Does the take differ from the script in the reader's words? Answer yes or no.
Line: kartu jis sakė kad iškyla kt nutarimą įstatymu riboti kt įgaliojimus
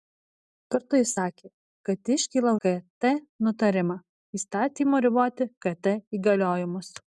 no